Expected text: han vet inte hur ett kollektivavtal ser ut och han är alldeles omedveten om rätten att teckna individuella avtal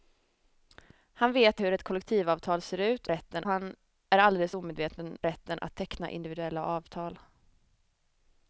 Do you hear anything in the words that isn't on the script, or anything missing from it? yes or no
yes